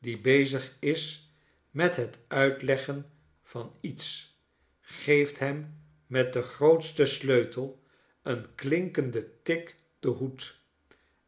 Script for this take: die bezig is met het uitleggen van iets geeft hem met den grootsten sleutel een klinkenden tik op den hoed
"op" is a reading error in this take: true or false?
true